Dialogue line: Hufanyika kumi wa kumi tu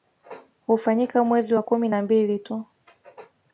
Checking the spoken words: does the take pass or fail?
fail